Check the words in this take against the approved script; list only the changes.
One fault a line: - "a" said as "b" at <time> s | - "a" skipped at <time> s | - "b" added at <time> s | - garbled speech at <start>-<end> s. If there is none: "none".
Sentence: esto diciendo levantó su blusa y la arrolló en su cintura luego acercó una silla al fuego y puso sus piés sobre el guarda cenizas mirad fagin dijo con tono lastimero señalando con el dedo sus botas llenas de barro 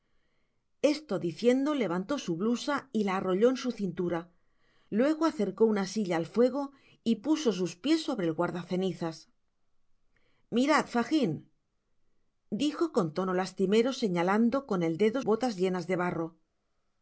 - "sus" skipped at 15.2 s